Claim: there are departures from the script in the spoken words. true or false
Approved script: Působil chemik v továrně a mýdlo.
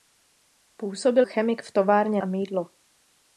false